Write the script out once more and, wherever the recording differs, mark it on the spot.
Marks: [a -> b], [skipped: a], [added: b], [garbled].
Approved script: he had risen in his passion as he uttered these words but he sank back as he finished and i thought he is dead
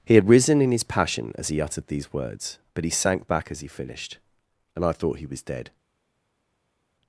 he had risen in his passion as he uttered these words but he sank back as he finished and i thought he [is -> was] dead